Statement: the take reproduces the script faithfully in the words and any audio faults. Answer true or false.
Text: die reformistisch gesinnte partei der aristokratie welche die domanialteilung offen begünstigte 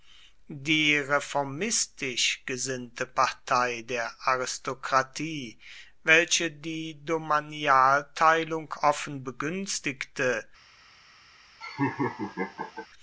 false